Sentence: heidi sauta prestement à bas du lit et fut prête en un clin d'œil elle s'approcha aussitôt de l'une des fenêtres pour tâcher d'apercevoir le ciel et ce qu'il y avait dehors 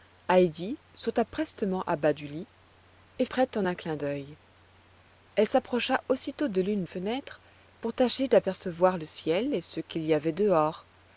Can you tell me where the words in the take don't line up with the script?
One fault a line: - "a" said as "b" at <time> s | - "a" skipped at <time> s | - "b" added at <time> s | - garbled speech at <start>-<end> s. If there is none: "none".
- "fut" skipped at 3.2 s
- "des" skipped at 6.9 s